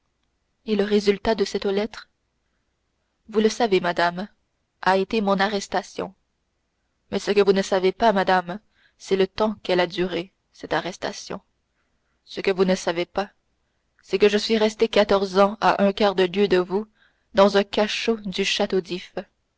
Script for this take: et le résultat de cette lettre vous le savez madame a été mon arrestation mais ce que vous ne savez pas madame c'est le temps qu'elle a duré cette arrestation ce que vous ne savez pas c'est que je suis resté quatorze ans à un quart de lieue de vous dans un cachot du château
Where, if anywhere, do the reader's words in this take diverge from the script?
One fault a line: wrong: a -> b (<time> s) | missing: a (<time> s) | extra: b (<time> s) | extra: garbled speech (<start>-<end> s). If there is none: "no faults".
no faults